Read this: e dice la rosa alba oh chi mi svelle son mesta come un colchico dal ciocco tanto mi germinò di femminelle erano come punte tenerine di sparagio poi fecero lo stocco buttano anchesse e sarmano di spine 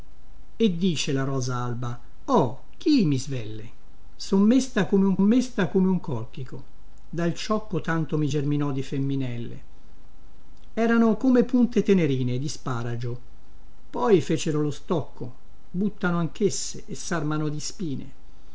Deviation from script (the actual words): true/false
true